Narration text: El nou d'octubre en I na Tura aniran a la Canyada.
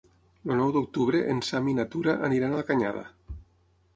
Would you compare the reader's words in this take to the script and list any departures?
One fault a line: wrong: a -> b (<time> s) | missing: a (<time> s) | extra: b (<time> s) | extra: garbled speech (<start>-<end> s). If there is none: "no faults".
extra: Sam (1.5 s)